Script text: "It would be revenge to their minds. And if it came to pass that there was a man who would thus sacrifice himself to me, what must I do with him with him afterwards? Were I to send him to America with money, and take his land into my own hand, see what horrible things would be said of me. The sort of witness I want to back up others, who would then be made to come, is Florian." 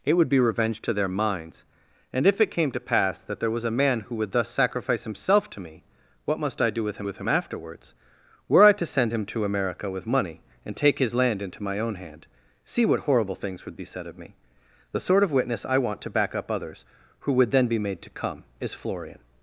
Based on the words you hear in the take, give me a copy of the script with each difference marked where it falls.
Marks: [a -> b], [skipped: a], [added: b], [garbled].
"It would be revenge to their minds. And if it came to pass that there was a man who would thus sacrifice himself to me, what must I do with him with him afterwards? Were I to send him to America with money, and take his land into my own hand, see what horrible things would be said of me. The sort of witness I want to back up others, who would then be made to come, is Florian."